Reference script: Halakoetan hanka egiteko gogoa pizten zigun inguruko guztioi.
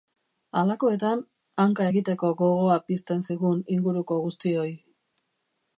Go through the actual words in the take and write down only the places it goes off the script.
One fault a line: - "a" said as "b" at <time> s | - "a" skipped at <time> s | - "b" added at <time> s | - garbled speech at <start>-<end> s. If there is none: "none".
none